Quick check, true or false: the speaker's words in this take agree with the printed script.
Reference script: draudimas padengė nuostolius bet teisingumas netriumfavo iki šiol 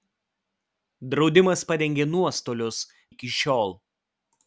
false